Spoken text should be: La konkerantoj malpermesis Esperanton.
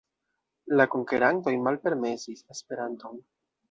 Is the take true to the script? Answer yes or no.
yes